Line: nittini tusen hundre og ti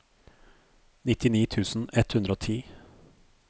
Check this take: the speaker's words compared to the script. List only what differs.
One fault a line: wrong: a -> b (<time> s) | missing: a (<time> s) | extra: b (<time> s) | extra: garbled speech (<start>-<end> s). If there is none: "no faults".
extra: ett (1.9 s)